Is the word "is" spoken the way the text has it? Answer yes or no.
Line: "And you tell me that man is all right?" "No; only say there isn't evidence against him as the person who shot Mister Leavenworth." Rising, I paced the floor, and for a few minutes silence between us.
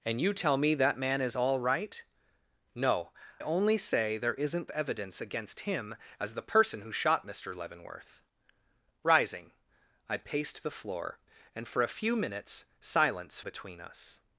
yes